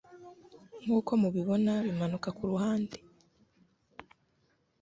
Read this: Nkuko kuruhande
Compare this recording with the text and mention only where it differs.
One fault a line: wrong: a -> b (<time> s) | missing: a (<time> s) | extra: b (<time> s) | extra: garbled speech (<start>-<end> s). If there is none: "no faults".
extra: mubibona bimanuka (1.2 s)